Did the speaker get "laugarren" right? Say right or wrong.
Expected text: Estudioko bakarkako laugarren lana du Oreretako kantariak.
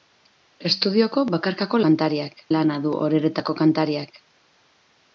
wrong